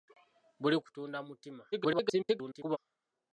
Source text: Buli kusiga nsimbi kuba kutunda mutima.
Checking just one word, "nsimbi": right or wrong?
wrong